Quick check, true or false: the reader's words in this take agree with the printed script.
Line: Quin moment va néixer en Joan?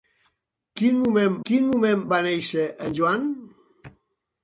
false